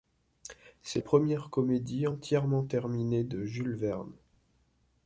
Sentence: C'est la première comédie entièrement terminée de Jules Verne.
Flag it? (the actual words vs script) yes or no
yes